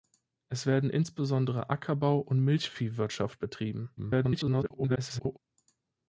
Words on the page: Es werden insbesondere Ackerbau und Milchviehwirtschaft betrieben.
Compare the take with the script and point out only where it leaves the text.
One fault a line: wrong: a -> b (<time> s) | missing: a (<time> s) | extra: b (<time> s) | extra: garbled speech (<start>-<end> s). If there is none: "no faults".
extra: garbled speech (4.0-5.4 s)